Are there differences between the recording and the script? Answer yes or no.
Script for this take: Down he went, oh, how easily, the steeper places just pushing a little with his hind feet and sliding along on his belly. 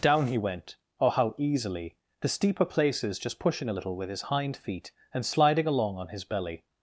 no